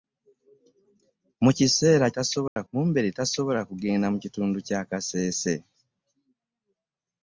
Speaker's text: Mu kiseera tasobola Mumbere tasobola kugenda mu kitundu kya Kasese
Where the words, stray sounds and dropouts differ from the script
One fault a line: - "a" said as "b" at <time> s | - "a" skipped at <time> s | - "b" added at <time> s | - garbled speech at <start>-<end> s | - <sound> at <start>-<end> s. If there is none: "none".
- dropout at 2.5-2.6 s